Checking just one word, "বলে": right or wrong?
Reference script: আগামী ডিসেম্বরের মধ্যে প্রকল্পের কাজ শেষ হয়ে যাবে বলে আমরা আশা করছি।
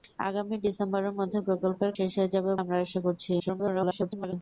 wrong